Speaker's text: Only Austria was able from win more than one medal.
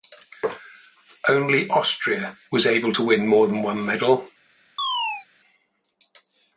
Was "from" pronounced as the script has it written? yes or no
no